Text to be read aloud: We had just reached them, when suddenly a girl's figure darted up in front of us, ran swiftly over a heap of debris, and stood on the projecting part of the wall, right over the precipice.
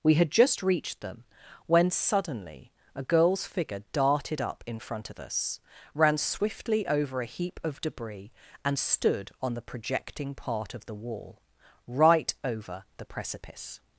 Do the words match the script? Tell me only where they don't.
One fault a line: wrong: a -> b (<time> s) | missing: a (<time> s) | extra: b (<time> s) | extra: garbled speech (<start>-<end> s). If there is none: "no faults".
no faults